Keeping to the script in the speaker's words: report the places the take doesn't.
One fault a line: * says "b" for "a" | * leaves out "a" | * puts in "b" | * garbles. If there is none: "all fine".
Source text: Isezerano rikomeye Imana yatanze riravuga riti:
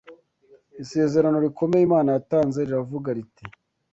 all fine